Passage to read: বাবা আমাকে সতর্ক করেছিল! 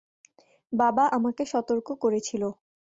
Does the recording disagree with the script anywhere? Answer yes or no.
no